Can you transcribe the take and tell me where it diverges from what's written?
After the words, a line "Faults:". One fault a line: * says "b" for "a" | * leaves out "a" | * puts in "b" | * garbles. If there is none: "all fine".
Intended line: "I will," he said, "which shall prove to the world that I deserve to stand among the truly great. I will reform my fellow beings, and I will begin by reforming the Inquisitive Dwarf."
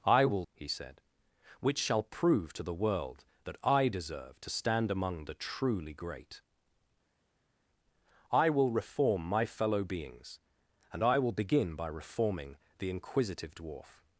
"I will," he said, "which shall prove to the world that I deserve to stand among the truly great. I will reform my fellow beings, and I will begin by reforming the Inquisitive Dwarf."
Faults:
all fine